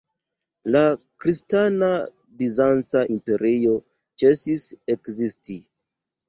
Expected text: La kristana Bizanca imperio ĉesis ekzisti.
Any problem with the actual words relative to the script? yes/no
no